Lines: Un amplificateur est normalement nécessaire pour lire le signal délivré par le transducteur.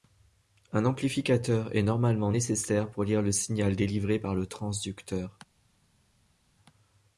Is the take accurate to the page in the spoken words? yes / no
yes